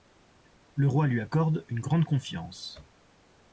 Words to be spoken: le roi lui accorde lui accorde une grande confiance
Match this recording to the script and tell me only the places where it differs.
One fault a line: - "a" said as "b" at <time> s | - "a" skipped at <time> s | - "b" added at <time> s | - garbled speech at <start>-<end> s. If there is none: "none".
- "lui accorde" skipped at 1.7 s